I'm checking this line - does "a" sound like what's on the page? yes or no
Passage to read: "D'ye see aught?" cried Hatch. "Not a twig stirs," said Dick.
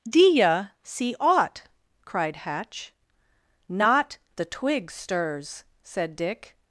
no